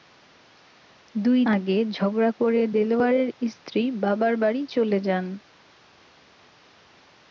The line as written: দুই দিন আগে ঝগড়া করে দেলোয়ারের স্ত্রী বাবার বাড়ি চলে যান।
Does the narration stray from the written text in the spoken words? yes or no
yes